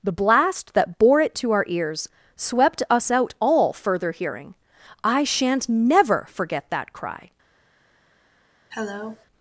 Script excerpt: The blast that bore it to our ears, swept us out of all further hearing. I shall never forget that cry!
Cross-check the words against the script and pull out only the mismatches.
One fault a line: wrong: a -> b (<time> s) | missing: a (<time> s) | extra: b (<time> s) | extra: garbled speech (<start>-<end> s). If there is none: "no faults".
missing: of (3.4 s)
wrong: shall -> shan't (5.2 s)